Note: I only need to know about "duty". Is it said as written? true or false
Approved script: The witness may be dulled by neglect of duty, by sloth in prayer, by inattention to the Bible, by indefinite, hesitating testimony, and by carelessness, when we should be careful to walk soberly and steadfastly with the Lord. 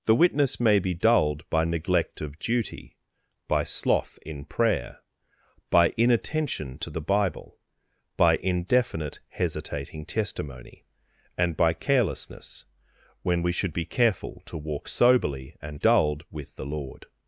true